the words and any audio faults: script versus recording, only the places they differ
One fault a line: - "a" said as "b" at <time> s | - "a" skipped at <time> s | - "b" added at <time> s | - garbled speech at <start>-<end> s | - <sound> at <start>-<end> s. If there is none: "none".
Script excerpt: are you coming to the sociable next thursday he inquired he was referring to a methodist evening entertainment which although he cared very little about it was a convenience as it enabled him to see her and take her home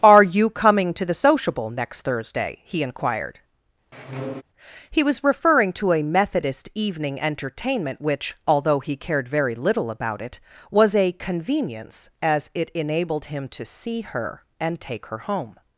- squeak at 3.9-4.4 s